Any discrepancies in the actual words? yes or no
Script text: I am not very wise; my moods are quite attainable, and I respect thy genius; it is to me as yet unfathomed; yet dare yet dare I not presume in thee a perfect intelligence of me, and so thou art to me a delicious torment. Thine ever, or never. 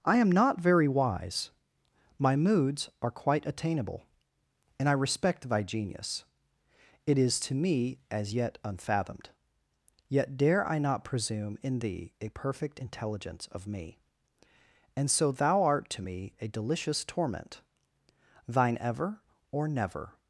yes